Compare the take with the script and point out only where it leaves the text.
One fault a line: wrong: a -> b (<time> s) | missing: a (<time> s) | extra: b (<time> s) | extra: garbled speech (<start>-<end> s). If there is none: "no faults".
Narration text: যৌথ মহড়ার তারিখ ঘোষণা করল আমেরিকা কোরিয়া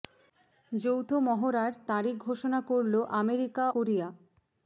no faults